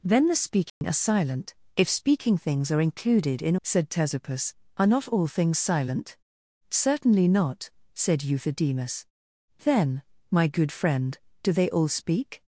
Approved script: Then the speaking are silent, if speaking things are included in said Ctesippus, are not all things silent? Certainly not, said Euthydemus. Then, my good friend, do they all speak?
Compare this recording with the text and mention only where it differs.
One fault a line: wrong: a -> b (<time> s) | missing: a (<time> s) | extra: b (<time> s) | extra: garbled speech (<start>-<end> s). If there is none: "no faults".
no faults